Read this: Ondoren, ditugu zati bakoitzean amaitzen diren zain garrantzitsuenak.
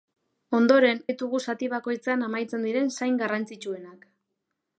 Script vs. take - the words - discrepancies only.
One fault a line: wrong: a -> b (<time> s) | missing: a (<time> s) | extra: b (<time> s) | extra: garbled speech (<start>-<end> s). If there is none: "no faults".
no faults